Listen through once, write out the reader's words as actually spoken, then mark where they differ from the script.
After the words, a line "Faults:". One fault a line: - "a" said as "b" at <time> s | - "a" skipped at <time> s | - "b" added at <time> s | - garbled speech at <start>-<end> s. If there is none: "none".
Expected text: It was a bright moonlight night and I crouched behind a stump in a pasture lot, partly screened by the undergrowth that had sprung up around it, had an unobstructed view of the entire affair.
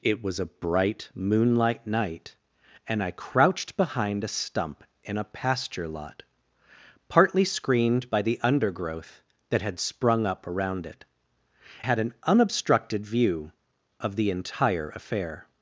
It was a bright moonlight night and I crouched behind a stump in a pasture lot, partly screened by the undergrowth that had sprung up around it, had an unobstructed view of the entire affair.
Faults:
none